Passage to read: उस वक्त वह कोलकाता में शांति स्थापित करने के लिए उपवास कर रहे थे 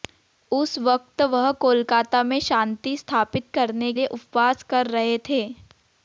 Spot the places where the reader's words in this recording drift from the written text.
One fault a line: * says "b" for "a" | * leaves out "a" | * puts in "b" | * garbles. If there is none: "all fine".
* leaves out "के"